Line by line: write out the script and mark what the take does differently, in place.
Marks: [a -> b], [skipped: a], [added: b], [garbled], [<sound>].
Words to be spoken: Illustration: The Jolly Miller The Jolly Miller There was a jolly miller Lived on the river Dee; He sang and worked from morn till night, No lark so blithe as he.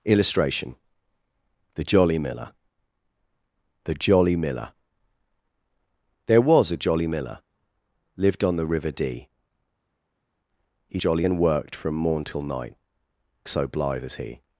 Illustration: The Jolly Miller The Jolly Miller There was a jolly miller Lived on the river Dee; He [sang -> jolly] and worked from morn till night, [skipped: No lark] so blithe as he.